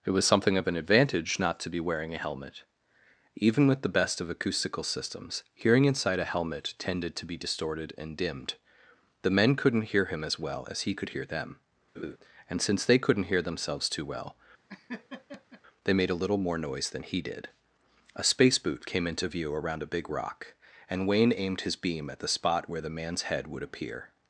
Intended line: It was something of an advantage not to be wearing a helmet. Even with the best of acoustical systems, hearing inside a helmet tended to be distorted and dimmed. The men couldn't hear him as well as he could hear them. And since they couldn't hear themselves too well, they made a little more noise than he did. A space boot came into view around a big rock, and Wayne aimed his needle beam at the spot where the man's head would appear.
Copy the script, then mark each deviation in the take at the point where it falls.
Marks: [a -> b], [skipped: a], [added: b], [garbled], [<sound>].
It was something of an advantage not to be wearing a helmet. Even with the best of acoustical systems, hearing inside a helmet tended to be distorted and dimmed. The men couldn't hear him as well as he could hear them. [laugh] And since they couldn't hear themselves too well, [laugh] they made a little more noise than he did. A space boot came into view around a big rock, and Wayne aimed his [skipped: needle] beam at the spot where the man's head would appear.